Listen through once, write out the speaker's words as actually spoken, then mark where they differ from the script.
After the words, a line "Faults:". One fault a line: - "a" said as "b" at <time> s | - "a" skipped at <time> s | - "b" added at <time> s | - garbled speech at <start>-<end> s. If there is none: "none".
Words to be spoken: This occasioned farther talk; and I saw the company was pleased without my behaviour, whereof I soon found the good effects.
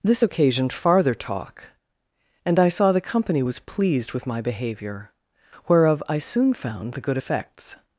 This occasioned farther talk; and I saw the company was pleased with my behaviour, whereof I soon found the good effects.
Faults:
- "without" said as "with" at 4.1 s